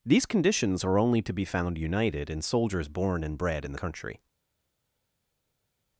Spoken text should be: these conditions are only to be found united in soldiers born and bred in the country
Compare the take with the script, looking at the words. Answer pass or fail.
pass